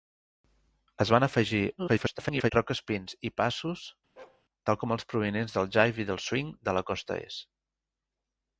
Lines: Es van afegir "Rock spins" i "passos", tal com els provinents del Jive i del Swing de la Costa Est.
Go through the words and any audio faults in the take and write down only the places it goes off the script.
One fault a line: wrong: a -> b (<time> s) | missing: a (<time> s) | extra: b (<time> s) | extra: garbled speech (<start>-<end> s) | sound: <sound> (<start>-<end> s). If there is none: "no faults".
extra: garbled speech (1.8-2.5 s)
sound: bark (4.2-4.4 s)